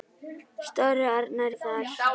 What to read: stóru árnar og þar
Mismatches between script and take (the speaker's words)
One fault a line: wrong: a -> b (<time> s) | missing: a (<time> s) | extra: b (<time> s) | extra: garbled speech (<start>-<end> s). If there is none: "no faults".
no faults